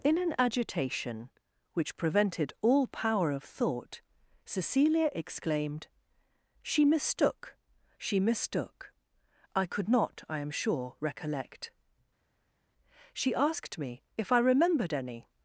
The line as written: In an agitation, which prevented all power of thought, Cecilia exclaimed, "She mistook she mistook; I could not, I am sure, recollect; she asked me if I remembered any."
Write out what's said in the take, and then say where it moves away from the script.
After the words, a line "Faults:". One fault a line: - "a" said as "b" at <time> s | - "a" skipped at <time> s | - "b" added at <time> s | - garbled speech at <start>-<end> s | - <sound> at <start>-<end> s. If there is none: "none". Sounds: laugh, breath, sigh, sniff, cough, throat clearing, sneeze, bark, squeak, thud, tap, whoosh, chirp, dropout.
In an agitation, which prevented all power of thought, Cecilia exclaimed, "She mistook she mistook; I could not, I am sure, recollect; she asked me if I remembered any."
Faults:
none